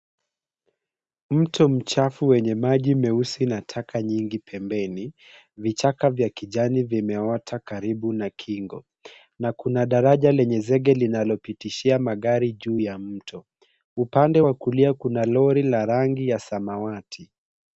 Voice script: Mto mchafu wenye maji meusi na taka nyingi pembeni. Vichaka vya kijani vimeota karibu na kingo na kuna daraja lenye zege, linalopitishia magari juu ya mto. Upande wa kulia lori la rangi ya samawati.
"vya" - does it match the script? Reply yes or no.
yes